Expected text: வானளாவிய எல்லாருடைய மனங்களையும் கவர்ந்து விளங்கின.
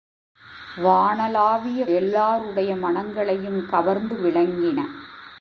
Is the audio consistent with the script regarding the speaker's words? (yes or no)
yes